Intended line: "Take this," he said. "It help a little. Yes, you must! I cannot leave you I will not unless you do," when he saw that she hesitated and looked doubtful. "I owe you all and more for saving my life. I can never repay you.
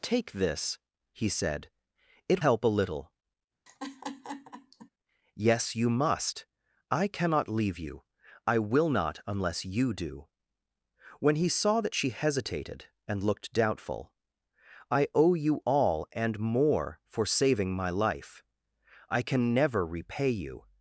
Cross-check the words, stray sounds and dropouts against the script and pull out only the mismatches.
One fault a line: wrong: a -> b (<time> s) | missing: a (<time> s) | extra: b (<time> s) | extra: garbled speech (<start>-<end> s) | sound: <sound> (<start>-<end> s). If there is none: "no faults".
sound: laugh (3.7-4.9 s)